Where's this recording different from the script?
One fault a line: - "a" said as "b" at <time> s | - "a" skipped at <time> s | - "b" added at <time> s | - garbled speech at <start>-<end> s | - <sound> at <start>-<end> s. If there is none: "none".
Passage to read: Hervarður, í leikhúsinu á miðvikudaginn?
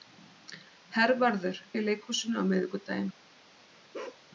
- bark at 3.9-4.2 s